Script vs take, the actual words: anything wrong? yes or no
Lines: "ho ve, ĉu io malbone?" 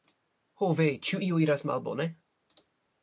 yes